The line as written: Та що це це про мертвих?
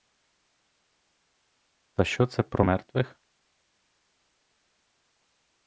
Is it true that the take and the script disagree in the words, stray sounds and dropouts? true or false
true